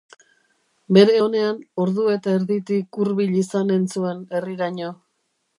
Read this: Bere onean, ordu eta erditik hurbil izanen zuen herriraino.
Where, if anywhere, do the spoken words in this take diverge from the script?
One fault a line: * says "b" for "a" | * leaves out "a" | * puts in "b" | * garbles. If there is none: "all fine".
all fine